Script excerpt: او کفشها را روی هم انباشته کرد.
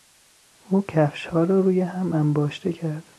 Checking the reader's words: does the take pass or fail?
pass